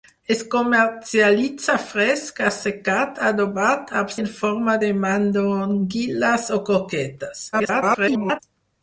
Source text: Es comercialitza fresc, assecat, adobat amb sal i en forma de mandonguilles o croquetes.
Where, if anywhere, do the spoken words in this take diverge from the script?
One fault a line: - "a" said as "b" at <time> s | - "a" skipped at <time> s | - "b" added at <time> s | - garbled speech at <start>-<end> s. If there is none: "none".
- "sal" skipped at 4.2 s
- garbled speech at 7.5-8.4 s